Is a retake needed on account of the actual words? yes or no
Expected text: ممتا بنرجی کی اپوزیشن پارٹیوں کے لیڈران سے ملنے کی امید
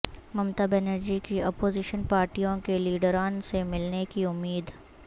no